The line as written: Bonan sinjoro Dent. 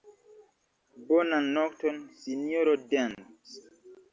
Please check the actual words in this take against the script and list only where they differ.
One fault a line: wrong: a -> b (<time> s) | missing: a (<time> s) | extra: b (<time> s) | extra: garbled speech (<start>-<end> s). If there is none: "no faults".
extra: nokton (1.6 s)